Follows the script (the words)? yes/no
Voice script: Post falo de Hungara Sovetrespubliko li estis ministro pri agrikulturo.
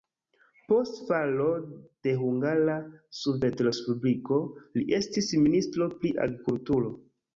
yes